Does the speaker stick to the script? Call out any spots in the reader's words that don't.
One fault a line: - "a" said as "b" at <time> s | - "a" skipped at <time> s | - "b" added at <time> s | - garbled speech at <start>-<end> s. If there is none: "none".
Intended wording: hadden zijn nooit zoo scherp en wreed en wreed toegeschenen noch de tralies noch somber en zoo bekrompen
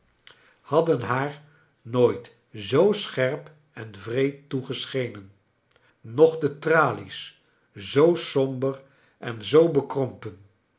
- "zijn" said as "haar" at 1.0 s
- "en wreed" skipped at 4.5 s
- "noch" said as "zoo" at 7.7 s